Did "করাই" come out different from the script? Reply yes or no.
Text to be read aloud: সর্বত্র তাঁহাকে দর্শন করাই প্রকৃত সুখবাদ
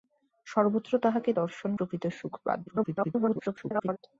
yes